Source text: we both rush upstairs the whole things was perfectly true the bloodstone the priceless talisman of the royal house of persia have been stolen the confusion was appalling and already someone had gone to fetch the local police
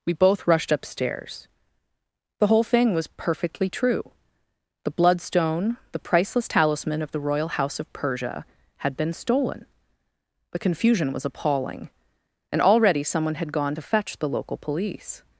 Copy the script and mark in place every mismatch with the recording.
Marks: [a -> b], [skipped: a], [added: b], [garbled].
we both [rush -> rushed] upstairs the whole [things -> thing] was perfectly true the bloodstone the priceless talisman of the royal house of persia [have -> had] been stolen the confusion was appalling and already someone had gone to fetch the local police